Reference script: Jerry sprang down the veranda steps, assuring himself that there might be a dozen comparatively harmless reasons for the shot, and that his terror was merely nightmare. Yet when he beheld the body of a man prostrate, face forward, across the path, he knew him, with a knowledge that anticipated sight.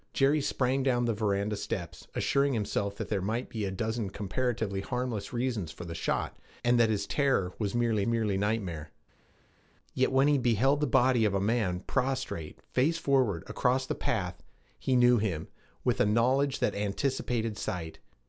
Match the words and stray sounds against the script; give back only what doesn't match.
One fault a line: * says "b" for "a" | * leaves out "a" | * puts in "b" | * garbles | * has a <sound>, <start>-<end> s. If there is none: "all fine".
* puts in "merely"